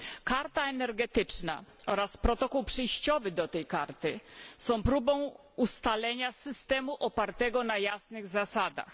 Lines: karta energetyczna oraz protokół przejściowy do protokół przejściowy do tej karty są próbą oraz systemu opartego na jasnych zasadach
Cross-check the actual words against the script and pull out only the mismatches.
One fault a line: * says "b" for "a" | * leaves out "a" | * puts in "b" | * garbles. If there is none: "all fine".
* leaves out "protokół przejściowy do"
* says "ustalenia" for "oraz"